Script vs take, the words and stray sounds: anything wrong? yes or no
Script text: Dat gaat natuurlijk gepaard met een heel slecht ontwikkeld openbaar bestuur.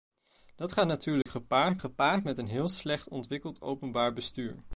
yes